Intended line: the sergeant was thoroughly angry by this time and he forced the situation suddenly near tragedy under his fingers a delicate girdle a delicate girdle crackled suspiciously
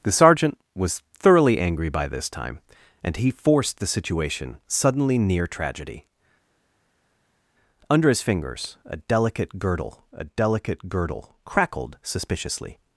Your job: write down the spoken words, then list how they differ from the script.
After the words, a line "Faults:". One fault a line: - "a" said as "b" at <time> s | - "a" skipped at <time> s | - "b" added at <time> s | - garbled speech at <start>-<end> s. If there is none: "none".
the sergeant was thoroughly angry by this time and he forced the situation suddenly near tragedy under his fingers a delicate girdle a delicate girdle crackled suspiciously
Faults:
none